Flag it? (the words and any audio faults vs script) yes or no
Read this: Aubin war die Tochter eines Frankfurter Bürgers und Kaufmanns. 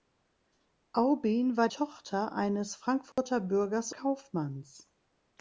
yes